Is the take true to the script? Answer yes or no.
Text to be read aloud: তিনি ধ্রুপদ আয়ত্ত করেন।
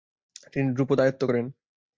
yes